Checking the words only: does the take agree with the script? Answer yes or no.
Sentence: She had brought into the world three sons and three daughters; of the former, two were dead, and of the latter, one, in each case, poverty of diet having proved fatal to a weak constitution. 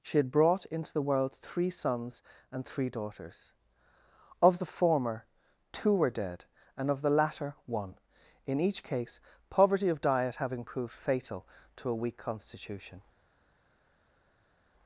yes